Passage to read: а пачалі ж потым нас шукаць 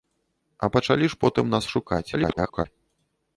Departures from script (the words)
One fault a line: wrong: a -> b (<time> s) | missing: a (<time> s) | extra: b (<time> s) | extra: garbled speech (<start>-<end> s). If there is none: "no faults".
extra: garbled speech (2.1-2.7 s)